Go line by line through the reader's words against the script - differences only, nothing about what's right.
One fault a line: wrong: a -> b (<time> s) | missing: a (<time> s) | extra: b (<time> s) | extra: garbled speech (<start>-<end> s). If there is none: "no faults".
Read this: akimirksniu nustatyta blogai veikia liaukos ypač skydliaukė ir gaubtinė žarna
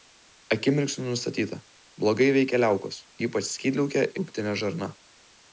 missing: ir (4.1 s)